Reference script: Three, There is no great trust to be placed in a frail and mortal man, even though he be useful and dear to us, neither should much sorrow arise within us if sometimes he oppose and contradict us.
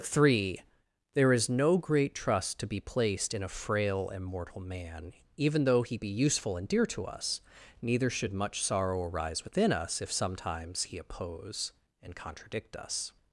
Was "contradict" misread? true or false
false